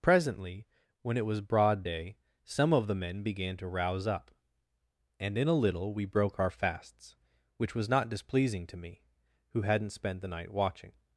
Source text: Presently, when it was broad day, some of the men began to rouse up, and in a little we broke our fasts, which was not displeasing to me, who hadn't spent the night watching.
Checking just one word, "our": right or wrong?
right